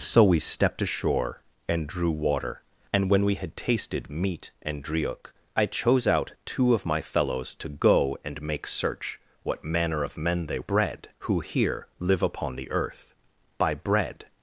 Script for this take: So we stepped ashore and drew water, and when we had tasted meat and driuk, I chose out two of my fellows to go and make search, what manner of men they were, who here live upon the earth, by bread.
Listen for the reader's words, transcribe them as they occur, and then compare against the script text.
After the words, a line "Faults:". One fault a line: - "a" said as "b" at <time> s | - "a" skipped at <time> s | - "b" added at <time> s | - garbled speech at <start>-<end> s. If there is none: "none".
So we stepped ashore and drew water, and when we had tasted meat and driuk, I chose out two of my fellows to go and make search, what manner of men they bread, who here live upon the earth, by bread.
Faults:
- "were" said as "bread" at 10.6 s